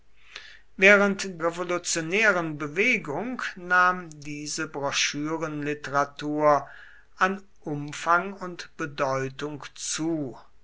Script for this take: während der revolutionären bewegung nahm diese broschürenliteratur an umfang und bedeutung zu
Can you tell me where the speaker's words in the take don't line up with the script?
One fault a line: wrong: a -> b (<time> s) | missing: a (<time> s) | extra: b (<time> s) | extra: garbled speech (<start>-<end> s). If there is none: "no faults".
missing: der (1.4 s)